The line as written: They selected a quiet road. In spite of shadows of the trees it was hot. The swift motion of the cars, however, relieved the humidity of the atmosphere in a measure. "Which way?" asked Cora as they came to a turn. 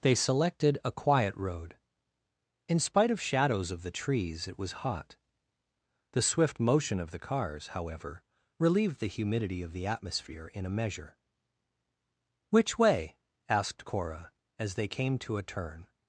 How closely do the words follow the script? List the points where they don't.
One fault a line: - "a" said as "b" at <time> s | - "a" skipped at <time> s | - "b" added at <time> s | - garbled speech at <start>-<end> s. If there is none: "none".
none